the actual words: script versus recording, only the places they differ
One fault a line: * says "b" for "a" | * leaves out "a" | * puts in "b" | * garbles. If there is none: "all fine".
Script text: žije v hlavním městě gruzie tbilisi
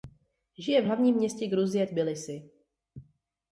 all fine